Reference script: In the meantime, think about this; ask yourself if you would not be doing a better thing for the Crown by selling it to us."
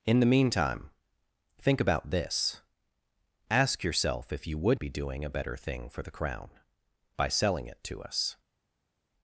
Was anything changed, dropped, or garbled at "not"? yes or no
yes